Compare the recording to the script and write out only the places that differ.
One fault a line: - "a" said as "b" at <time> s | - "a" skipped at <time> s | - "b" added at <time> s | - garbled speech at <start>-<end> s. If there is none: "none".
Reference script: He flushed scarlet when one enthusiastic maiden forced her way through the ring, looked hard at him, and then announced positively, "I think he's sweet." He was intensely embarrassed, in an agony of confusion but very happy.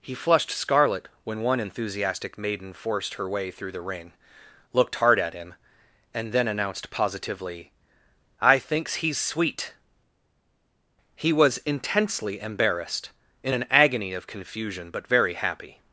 - "think" said as "thinks" at 8.6 s